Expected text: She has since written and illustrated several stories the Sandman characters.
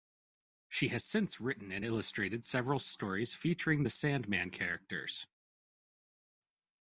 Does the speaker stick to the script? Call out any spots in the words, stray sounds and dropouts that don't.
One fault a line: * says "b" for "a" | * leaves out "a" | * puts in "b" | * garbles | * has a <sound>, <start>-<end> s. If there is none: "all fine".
* puts in "featuring"